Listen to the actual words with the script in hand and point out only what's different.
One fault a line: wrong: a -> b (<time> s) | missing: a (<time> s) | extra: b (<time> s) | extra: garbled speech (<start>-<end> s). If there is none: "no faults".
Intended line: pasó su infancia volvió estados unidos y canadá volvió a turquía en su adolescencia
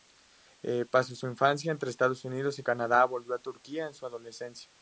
wrong: volvió -> entre (1.7 s)